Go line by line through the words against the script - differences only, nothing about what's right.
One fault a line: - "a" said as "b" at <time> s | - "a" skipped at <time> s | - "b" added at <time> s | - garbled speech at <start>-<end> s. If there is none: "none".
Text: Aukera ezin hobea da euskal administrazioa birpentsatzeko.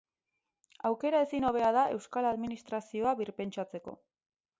none